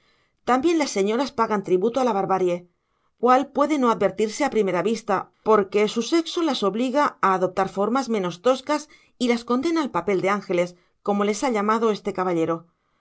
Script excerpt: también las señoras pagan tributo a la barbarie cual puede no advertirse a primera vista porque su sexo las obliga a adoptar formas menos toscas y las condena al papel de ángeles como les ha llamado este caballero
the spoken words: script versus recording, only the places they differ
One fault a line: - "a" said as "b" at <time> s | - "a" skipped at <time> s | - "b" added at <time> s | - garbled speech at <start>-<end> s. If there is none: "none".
none